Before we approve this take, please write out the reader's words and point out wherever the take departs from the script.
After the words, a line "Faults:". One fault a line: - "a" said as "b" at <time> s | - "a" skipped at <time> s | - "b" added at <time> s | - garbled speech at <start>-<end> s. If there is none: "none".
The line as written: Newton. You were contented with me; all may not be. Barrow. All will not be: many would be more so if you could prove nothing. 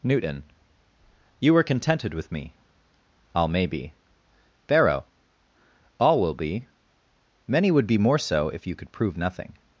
Newton. You were contented with me; all may be. Barrow. All will be: many would be more so if you could prove nothing.
Faults:
- "not" skipped at 3.6 s
- "not" skipped at 6.3 s